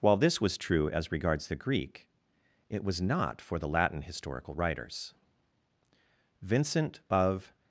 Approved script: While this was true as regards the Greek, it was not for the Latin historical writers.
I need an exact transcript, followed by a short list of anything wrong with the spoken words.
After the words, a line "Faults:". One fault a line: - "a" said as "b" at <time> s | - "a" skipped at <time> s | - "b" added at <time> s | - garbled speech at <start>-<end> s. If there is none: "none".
While this was true as regards the Greek, it was not for the Latin historical writers. Vincent of
Faults:
- "Vincent of" added at 6.4 s